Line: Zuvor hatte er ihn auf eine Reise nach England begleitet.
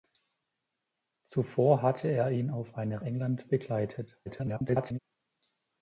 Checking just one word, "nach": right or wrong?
wrong